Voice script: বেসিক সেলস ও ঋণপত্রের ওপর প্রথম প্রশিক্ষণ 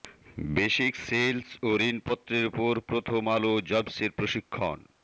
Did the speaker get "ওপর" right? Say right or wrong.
right